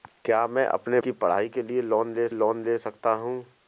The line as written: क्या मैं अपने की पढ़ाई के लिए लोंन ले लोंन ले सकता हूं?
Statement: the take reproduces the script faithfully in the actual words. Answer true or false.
true